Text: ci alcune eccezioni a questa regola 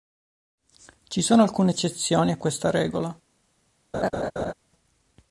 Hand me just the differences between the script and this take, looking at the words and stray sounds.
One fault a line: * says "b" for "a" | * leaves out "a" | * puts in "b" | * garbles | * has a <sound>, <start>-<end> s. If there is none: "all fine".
* puts in "sono"
* has a laugh, 3.9-4.5 s